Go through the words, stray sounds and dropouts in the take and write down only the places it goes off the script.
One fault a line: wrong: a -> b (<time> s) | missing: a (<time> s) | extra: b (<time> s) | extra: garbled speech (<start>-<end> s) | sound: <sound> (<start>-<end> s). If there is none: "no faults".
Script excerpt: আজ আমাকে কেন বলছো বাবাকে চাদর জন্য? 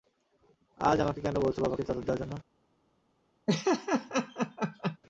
extra: দেওয়ার (2.0 s)
sound: laugh (3.5-5.0 s)